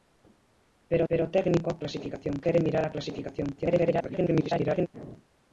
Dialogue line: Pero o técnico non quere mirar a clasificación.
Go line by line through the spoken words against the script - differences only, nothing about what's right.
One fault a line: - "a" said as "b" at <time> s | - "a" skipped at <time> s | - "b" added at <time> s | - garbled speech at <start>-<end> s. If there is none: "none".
- "pero" added at 1.1 s
- "non" said as "clasificación" at 1.8 s
- garbled speech at 3.6-4.9 s